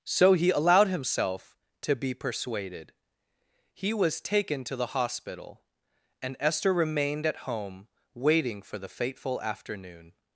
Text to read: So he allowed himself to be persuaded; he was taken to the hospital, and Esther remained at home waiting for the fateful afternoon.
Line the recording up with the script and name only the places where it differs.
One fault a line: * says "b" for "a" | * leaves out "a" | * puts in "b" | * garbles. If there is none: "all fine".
all fine